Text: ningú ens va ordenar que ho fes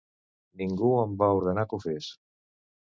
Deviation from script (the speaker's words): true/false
true